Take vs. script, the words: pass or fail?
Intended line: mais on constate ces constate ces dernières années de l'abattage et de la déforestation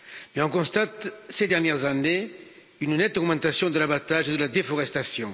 fail